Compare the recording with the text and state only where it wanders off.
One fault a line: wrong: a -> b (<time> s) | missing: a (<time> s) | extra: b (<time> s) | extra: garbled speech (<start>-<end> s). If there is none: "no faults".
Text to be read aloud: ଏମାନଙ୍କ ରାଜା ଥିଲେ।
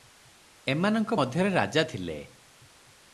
extra: ମଧ୍ୟରେ (1.1 s)